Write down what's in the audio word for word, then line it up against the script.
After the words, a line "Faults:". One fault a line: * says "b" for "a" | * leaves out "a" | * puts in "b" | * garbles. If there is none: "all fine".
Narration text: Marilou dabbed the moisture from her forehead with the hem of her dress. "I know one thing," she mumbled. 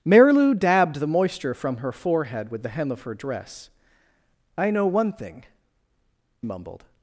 Marilou dabbed the moisture from her forehead with the hem of her dress. "I know one thing," mumbled.
Faults:
* leaves out "she"